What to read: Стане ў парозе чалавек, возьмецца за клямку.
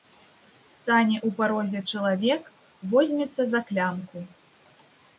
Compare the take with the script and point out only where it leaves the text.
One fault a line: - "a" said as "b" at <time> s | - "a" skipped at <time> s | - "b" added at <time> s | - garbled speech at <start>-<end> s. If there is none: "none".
none